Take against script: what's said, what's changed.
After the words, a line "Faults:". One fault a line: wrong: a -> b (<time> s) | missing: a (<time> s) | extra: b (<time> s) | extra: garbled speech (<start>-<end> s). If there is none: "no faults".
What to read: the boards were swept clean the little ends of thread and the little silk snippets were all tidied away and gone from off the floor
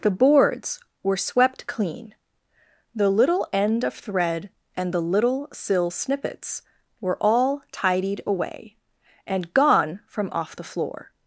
the boards were swept clean the little end of thread and the little sill snippets were all tidied away and gone from off the floor
Faults:
wrong: ends -> end (3.5 s)
wrong: silk -> sill (5.5 s)